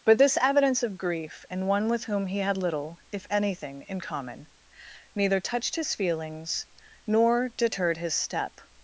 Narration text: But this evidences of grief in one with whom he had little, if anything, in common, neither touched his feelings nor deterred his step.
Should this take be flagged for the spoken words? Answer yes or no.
yes